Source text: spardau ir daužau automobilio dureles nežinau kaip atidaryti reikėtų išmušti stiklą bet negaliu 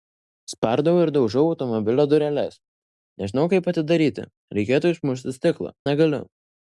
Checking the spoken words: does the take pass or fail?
fail